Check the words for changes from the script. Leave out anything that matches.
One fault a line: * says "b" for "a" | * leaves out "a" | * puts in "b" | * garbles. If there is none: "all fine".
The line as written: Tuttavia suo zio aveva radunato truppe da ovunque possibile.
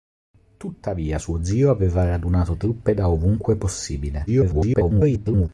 * garbles